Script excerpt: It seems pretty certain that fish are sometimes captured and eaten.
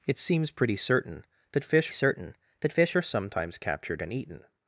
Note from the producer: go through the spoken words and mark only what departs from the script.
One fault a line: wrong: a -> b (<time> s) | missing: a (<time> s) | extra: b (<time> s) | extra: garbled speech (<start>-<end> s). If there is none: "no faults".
extra: certain that fish (1.9 s)